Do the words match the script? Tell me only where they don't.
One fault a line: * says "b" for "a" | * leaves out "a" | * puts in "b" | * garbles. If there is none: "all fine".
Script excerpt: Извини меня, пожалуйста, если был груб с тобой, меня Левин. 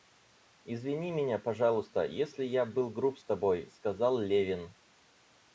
* puts in "я"
* says "сказал" for "меня"